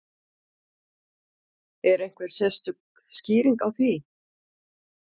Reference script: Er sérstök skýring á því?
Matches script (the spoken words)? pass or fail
fail